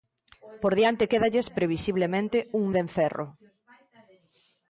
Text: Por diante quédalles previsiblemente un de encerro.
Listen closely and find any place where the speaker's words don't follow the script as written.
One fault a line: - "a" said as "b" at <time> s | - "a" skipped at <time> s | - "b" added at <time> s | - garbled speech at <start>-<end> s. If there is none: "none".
none